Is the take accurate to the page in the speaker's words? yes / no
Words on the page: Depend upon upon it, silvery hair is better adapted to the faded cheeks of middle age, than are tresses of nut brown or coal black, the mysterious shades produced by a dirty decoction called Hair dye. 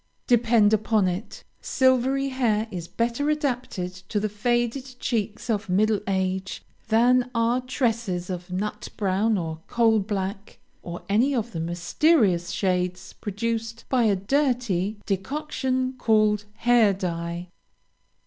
no